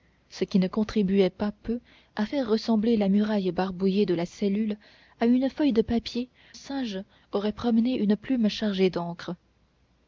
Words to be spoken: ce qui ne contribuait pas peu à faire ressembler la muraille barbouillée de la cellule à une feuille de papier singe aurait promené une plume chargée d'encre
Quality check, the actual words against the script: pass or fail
pass